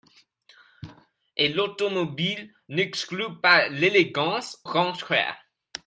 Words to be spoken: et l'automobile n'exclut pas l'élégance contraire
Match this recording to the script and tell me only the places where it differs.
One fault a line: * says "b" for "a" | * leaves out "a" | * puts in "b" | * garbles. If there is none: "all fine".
all fine